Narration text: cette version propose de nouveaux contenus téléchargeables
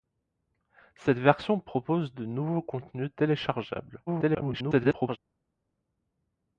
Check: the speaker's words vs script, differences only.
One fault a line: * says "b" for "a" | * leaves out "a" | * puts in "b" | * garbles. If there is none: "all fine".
* garbles